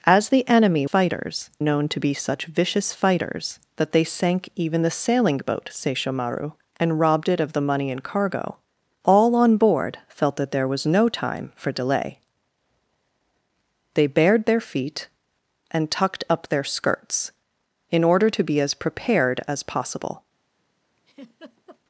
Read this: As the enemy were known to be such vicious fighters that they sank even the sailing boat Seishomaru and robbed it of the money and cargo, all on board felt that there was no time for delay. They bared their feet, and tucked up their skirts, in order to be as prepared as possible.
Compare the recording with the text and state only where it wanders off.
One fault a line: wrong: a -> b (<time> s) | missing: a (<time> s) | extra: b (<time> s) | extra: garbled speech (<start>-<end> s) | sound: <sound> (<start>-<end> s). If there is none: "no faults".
wrong: were -> fighters (0.8 s)
sound: laugh (21.0-21.8 s)